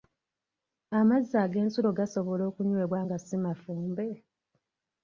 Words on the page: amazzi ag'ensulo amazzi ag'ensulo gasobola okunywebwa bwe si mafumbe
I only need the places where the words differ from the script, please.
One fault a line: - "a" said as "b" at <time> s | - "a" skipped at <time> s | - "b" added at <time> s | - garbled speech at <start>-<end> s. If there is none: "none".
- "amazzi ag'ensulo" skipped at 1.9 s
- "bwe" said as "nga" at 3.0 s